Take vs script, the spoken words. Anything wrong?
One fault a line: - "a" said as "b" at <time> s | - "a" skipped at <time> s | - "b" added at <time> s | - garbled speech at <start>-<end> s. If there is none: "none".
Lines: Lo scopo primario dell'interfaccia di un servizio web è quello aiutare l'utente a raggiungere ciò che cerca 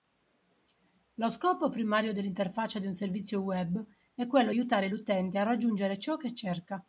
none